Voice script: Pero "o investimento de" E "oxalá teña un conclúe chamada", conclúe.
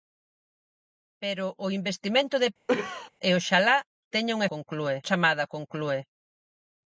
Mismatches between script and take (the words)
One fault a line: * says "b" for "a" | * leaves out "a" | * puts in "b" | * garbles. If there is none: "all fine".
all fine